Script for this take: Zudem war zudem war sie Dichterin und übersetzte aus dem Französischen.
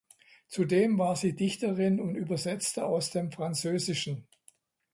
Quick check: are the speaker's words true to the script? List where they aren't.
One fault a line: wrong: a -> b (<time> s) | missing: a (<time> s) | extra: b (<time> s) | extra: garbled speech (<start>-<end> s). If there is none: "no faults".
missing: zudem war (1.1 s)